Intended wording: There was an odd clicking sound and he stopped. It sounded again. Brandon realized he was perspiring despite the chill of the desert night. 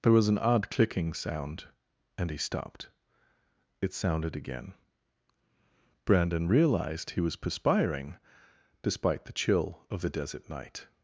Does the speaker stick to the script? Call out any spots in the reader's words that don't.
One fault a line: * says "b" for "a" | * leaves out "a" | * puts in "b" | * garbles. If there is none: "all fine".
all fine